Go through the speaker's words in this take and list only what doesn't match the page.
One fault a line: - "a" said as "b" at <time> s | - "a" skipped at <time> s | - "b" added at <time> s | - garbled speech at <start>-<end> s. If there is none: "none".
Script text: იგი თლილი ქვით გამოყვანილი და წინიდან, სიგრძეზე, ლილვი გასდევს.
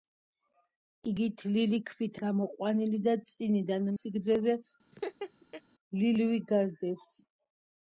none